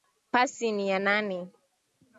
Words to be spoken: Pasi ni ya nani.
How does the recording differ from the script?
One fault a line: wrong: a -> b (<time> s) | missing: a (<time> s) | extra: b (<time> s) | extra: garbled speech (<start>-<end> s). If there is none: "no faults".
no faults